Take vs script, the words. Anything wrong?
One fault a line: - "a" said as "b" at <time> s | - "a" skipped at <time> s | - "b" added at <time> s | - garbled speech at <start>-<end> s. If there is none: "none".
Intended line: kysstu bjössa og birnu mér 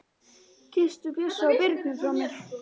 - "frá" added at 2.0 s